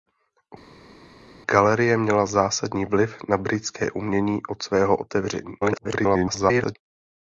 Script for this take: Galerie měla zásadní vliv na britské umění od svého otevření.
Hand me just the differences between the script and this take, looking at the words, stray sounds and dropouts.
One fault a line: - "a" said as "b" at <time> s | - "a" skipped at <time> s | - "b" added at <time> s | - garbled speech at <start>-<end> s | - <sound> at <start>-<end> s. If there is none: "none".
- garbled speech at 5.6-6.8 s